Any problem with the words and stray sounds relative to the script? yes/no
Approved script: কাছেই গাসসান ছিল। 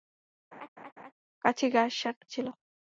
yes